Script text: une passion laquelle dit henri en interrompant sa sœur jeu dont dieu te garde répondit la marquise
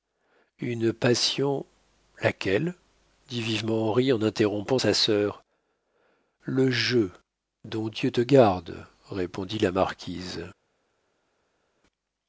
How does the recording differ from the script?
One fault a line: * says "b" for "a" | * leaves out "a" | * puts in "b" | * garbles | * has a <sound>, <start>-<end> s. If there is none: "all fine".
* puts in "vivement"
* puts in "le"